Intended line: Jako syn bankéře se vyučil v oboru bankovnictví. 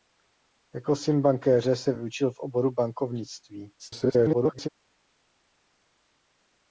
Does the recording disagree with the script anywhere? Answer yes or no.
yes